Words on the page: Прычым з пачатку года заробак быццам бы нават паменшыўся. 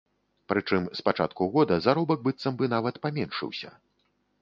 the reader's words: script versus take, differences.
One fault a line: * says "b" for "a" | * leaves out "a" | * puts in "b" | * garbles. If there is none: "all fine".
all fine